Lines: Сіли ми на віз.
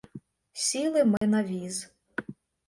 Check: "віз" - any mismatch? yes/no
no